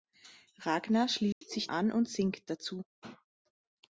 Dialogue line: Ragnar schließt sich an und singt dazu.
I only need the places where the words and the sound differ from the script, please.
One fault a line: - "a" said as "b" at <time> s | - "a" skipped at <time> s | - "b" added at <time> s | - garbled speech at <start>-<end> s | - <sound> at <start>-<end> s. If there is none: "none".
- dropout at 1.3-1.4 s